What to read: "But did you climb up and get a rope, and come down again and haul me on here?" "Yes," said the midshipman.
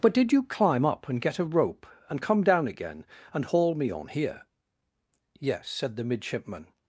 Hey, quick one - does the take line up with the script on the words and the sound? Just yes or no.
yes